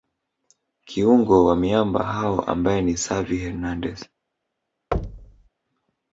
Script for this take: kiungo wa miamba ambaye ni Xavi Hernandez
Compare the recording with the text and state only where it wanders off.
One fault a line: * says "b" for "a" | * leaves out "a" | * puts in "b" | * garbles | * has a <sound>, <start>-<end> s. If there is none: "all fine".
* puts in "hao"
* has a thud, 4.9-5.5 s